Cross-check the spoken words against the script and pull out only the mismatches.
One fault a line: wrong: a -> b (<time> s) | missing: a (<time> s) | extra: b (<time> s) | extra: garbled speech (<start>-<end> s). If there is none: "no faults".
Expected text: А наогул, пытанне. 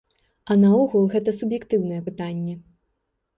extra: гэта суб'ектыўнае (1.1 s)